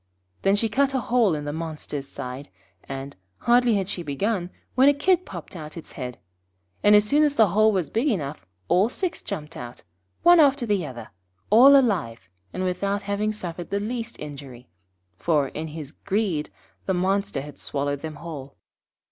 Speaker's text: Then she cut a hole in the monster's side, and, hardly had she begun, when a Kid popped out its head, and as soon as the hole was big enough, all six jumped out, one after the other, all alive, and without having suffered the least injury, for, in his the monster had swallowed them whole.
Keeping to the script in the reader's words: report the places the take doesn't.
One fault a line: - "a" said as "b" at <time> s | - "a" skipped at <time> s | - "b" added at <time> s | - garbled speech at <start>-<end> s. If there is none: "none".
- "greed" added at 15.9 s